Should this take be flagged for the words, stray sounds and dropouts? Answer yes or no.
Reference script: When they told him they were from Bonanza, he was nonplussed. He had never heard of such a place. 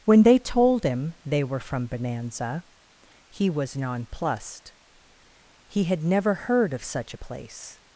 no